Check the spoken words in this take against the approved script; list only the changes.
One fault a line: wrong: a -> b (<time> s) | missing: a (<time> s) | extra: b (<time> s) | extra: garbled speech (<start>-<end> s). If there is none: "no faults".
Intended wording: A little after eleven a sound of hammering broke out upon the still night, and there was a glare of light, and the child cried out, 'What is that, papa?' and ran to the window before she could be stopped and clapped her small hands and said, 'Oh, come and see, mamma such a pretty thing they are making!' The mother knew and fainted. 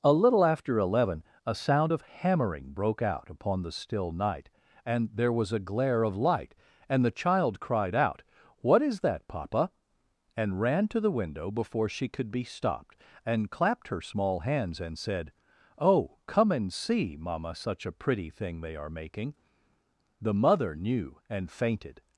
no faults